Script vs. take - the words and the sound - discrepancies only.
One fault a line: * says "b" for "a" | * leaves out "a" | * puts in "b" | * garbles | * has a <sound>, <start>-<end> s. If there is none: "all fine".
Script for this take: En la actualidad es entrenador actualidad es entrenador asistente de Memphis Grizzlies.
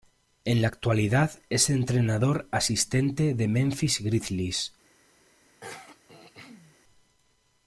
* leaves out "actualidad es entrenador"
* has a throat clearing, 5.6-6.8 s